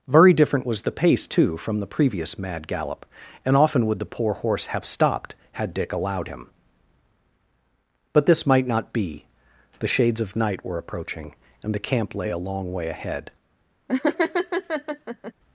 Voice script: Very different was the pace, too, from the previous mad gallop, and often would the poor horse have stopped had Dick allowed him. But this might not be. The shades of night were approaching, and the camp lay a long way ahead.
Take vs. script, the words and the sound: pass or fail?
fail